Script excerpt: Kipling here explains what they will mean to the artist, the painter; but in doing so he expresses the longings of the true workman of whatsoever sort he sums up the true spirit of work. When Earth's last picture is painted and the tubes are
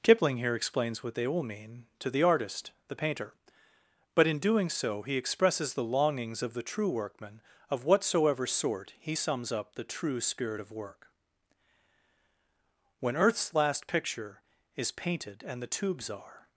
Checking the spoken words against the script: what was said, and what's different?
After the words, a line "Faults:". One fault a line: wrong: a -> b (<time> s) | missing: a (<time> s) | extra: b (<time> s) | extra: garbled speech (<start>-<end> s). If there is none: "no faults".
Kipling here explains what they will mean to the artist, the painter; but in doing so he expresses the longings of the true workman of whatsoever sort he sums up the true spirit of work. When Earth's last picture is painted and the tubes are
Faults:
no faults